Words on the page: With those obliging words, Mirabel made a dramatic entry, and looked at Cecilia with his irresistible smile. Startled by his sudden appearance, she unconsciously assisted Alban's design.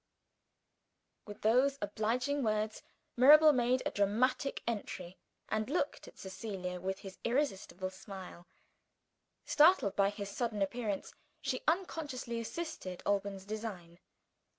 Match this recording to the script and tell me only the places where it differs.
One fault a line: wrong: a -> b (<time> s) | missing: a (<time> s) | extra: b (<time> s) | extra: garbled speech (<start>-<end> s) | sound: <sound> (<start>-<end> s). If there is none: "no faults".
no faults